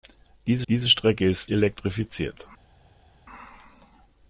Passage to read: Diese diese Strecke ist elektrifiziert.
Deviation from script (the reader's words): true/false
false